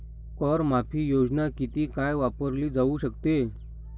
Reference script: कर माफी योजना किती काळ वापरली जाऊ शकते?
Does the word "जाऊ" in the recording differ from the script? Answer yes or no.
no